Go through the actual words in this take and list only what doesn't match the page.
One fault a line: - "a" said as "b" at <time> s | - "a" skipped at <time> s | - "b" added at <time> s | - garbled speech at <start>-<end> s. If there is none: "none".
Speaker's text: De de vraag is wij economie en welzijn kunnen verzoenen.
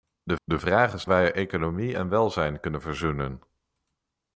none